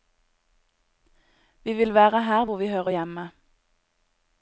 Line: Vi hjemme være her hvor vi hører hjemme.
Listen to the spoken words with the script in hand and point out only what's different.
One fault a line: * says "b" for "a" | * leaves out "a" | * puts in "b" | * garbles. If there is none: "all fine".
* says "vil" for "hjemme"